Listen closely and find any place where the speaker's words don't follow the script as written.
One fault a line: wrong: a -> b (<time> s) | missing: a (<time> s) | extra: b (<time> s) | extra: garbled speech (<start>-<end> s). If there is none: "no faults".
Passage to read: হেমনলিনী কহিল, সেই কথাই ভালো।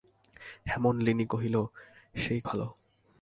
missing: কথাই (2.4 s)